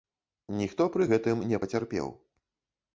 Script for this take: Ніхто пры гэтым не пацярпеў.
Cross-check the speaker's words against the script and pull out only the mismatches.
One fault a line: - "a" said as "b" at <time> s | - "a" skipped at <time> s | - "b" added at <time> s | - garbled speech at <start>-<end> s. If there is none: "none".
none